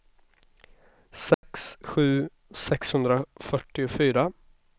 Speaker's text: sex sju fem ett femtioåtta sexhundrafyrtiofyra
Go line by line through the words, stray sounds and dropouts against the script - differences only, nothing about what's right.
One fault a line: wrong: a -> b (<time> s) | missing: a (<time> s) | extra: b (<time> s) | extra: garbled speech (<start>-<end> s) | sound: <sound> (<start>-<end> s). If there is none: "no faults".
sound: dropout (1.3-1.4 s)
missing: fem ett femtioåtta (2.3 s)